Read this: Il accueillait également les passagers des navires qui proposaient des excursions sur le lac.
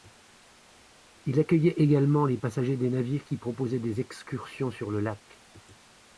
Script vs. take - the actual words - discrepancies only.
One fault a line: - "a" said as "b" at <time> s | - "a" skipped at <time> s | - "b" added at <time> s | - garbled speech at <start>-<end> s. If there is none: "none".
none